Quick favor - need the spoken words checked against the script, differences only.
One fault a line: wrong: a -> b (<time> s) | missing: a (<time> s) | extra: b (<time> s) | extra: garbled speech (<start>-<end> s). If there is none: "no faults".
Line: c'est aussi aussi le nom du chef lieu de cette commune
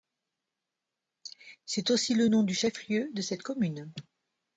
missing: aussi (2.1 s)